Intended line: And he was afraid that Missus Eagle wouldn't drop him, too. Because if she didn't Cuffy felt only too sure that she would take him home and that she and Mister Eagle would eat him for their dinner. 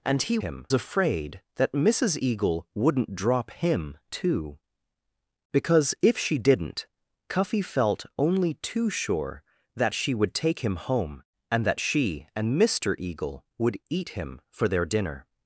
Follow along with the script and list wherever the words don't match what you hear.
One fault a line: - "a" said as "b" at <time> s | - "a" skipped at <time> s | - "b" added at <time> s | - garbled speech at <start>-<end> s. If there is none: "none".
- "was" said as "him" at 0.4 s